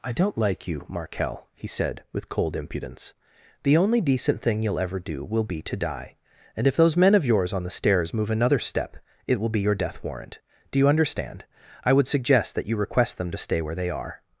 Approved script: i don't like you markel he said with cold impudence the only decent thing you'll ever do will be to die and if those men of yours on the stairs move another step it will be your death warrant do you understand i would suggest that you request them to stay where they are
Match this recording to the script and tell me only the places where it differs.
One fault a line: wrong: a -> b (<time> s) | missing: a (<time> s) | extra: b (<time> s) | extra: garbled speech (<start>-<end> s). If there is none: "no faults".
no faults